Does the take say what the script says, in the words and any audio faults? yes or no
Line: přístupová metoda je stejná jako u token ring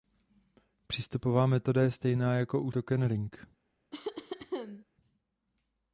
no